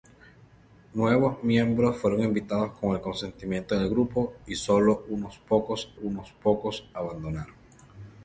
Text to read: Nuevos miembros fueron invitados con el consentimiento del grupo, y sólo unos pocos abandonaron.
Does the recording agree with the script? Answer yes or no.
no